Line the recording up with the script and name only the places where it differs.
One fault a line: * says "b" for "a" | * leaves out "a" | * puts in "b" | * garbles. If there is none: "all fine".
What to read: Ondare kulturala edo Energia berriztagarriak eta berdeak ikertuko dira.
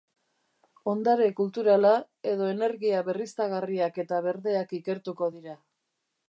all fine